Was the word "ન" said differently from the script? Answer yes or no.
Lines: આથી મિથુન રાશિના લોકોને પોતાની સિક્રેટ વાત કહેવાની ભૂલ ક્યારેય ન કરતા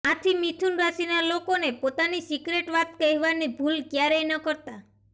no